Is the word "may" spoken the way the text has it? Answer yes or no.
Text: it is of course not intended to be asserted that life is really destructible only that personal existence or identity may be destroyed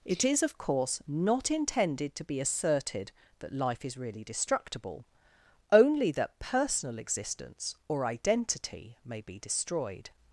yes